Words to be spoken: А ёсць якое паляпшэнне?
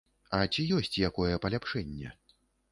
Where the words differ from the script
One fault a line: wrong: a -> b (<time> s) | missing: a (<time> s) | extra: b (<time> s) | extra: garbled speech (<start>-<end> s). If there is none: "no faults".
extra: ці (0.5 s)